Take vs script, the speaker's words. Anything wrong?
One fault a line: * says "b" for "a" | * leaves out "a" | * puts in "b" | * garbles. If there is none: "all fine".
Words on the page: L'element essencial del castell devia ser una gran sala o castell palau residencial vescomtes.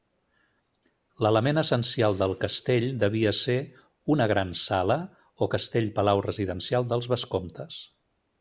* puts in "dels"